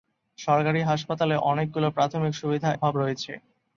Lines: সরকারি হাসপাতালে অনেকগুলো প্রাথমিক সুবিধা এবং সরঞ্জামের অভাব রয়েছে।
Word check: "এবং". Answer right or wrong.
wrong